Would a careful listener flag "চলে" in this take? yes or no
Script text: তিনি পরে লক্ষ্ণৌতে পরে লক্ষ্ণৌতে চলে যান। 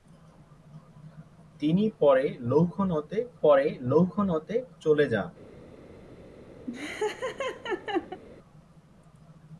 no